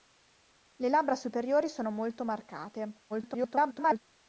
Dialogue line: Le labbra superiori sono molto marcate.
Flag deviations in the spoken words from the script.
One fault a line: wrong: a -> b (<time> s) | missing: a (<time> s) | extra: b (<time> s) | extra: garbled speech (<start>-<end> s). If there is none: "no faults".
extra: garbled speech (3.1-4.0 s)